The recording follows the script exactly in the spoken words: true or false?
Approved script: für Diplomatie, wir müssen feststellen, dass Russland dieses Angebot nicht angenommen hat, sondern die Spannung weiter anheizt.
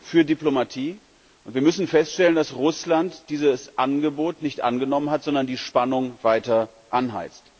false